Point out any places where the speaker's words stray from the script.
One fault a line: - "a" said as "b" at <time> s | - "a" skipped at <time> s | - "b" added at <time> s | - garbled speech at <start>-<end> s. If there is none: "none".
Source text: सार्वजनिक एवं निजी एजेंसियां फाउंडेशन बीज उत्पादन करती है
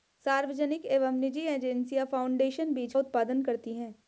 none